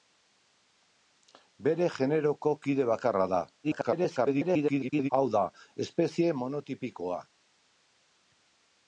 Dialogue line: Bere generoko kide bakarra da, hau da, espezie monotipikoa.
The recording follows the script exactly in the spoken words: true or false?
false